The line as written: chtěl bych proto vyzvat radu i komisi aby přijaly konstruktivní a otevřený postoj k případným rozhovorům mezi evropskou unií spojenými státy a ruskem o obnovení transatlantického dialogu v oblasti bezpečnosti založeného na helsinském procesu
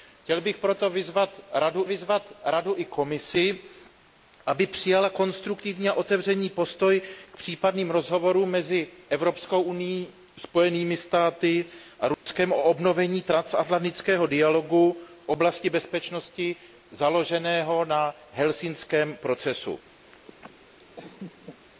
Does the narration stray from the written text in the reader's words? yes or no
yes